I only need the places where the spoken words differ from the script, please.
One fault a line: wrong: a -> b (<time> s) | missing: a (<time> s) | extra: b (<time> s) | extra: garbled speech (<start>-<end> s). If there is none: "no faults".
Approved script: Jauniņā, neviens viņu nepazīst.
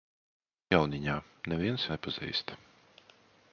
missing: viņu (1.8 s)